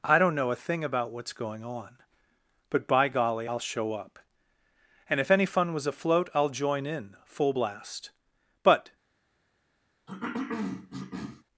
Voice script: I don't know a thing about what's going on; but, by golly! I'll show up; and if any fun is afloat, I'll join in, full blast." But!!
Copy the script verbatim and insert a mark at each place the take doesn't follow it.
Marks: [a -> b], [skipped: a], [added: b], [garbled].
I don't know a thing about what's going on; but, by golly! I'll show up; and if any fun [is -> was] afloat, I'll join in, full blast." But!!